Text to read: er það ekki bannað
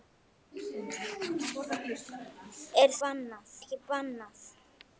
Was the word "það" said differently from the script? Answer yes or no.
yes